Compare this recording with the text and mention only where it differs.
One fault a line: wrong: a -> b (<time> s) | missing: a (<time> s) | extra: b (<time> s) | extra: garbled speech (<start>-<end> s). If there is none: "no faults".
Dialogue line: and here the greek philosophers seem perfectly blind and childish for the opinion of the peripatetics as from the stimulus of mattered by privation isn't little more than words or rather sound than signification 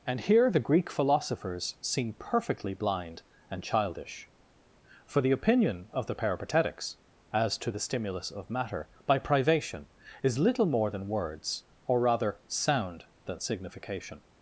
wrong: from -> to (7.6 s)
wrong: mattered -> matter (8.5 s)
wrong: isn't -> is (10.2 s)